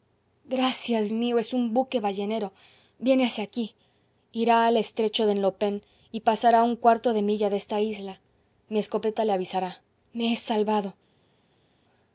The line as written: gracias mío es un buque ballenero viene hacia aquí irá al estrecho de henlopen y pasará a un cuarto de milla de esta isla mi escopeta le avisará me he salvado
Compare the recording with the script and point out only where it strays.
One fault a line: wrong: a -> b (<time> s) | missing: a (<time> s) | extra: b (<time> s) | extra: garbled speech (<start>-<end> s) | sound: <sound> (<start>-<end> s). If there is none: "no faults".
no faults